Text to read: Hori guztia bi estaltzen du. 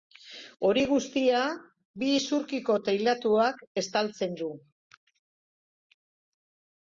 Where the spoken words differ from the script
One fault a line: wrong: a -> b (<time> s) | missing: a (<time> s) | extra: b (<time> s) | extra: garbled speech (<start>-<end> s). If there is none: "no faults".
extra: isurkiko teilatuak (2.2 s)